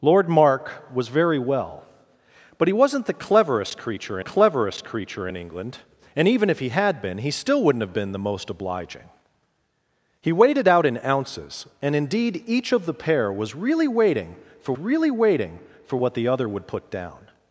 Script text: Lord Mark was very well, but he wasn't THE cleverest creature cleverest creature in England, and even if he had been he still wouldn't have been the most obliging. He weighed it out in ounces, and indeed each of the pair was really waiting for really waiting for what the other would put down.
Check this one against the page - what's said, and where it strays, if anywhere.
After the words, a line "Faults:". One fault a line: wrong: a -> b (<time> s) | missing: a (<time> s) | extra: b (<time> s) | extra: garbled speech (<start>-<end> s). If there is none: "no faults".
Lord Mark was very well, but he wasn't THE cleverest creature cleverest creature in England, and even if he had been he still wouldn't have been the most obliging. He weighed it out in ounces, and indeed each of the pair was really waiting for really waiting for what the other would put down.
Faults:
no faults